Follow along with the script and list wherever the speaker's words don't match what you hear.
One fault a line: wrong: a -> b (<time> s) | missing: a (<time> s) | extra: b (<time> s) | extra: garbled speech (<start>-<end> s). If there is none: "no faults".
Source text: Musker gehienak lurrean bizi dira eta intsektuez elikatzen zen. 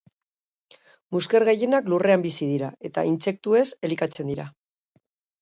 wrong: zen -> dira (4.4 s)